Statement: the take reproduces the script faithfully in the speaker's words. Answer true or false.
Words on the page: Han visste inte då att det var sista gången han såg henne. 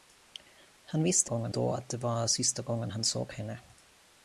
false